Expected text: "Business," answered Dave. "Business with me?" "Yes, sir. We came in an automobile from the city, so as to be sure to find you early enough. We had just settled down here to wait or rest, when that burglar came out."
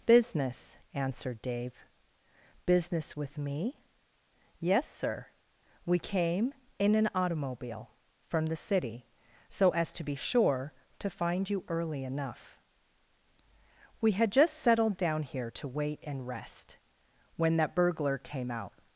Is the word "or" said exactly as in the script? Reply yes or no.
no